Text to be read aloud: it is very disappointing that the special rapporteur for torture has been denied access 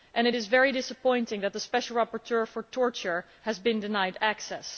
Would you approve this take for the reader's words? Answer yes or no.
yes